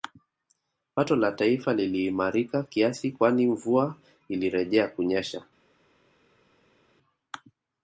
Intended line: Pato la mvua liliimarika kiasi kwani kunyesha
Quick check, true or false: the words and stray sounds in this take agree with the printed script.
false